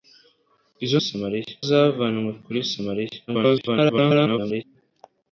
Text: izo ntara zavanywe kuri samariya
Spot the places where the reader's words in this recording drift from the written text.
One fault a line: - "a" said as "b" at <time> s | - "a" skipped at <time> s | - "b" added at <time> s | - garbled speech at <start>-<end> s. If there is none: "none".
- "ntara" said as "samariya" at 1.1 s
- garbled speech at 3.3-4.6 s